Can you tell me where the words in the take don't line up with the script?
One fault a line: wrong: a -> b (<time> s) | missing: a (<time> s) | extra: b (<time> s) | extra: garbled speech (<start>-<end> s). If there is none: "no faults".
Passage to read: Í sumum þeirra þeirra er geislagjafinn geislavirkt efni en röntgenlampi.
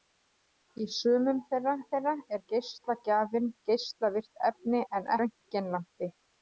no faults